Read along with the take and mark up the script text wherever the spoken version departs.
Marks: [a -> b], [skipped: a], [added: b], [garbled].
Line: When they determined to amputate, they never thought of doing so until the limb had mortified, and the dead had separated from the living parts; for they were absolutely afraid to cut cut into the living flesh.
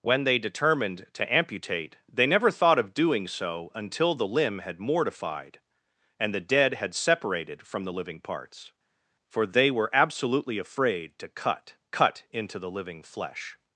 When they determined to amputate, they never thought of doing so until the limb had mortified, and the dead had separated from the living parts; for they were absolutely afraid to cut cut into the living flesh.